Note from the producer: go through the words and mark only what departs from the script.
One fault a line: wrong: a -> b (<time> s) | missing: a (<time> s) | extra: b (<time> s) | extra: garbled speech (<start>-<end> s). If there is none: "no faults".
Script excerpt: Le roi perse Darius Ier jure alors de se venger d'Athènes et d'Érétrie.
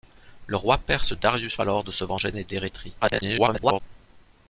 missing: Ier jure (1.6 s)
missing: d'Athènes (2.3 s)
extra: garbled speech (3.0-3.8 s)